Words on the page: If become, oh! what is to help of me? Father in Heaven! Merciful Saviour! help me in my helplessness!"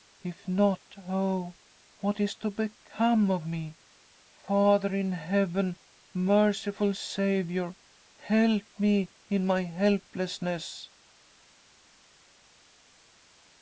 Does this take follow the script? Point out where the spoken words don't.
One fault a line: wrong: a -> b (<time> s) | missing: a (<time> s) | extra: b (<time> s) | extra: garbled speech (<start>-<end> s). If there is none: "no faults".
wrong: become -> not (0.5 s)
wrong: help -> become (2.5 s)